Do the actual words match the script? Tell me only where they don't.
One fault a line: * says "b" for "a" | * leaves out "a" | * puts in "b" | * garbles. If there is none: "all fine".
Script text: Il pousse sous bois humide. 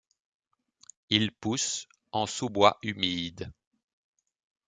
* puts in "en"